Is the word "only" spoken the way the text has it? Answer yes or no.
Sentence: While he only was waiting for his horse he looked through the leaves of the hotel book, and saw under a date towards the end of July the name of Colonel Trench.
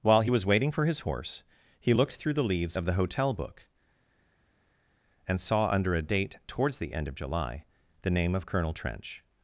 no